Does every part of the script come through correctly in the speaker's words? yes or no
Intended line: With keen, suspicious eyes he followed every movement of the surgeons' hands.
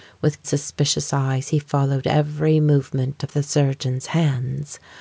no